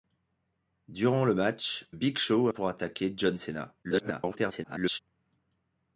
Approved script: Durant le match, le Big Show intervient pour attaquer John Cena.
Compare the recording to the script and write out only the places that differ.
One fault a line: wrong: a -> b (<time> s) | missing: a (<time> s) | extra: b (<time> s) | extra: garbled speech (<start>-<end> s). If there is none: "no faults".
missing: le (1.9 s)
missing: intervient (2.5 s)
extra: garbled speech (3.8-5.0 s)